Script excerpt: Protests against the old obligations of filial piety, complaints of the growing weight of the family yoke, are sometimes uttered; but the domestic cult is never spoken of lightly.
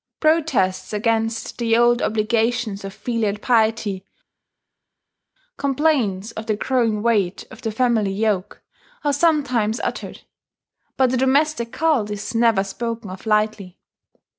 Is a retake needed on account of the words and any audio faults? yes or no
no